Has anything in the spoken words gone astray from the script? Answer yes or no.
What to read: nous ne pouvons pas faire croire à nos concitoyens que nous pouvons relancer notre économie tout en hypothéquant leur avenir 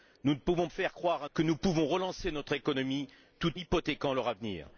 yes